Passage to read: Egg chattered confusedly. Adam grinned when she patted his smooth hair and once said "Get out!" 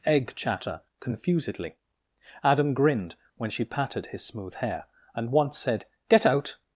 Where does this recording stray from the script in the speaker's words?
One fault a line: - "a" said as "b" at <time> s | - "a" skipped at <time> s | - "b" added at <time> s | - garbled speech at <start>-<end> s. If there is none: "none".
- "chattered" said as "chatter" at 0.3 s